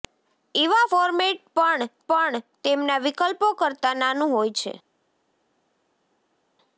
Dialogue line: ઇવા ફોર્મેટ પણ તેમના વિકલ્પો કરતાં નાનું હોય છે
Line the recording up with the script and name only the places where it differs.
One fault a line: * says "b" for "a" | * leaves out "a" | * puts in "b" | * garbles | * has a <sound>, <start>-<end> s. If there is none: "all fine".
* puts in "પણ"